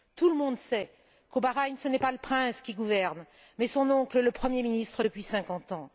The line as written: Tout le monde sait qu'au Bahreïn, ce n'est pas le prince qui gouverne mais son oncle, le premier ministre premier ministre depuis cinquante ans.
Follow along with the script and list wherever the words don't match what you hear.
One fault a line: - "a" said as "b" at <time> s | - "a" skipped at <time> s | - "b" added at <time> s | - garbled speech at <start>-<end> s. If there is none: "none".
- "premier ministre" skipped at 5.0 s